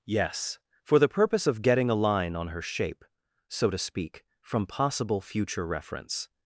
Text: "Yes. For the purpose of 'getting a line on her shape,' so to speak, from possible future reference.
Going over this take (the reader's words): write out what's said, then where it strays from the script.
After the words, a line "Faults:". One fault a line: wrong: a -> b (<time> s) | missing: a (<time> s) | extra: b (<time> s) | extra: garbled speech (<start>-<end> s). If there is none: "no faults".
"Yes. For the purpose of 'getting a line on her shape,' so to speak, from possible future reference.
Faults:
no faults